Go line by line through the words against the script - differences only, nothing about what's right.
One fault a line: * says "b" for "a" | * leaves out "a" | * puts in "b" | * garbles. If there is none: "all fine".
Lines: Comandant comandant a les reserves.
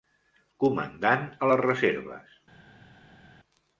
* leaves out "comandant"